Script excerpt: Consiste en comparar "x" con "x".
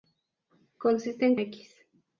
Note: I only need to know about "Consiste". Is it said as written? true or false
true